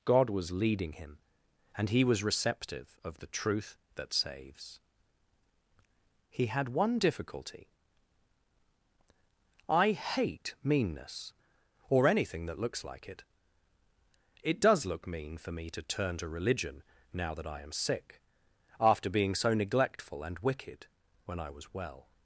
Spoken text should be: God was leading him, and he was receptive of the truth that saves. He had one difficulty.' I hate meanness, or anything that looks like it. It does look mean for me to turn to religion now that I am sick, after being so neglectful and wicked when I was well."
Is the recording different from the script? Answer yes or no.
no